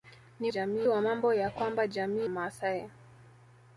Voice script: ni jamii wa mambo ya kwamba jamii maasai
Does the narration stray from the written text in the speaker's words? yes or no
no